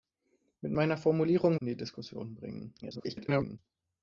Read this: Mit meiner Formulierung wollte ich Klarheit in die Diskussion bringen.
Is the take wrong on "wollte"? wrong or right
wrong